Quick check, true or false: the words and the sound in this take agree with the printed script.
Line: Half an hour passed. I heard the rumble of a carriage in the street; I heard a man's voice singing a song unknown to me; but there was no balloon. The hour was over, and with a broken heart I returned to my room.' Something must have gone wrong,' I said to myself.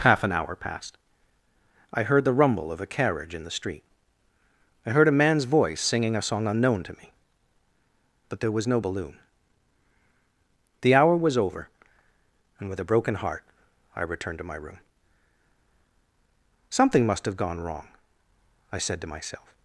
true